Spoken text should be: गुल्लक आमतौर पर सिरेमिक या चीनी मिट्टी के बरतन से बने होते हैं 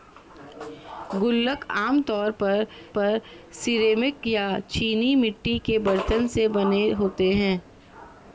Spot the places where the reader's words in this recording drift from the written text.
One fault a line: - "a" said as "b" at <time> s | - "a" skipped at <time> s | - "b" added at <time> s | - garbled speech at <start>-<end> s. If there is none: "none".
- "पर" added at 2.9 s